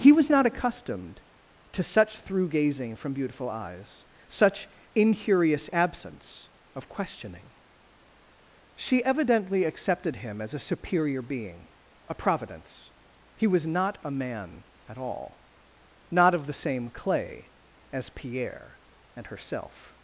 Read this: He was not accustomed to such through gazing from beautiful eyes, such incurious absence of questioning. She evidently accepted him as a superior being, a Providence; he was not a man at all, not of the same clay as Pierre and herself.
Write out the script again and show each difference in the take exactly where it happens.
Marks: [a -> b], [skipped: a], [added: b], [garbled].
He was not accustomed to such through gazing from beautiful eyes, such incurious absence of questioning. She evidently accepted him as a superior being, a Providence; he was not a man at all, not of the same clay as Pierre and herself.